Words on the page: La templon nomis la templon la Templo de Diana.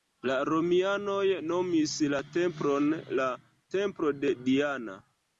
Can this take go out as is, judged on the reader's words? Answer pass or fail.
fail